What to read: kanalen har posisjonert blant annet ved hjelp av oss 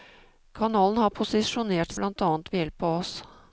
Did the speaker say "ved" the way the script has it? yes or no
yes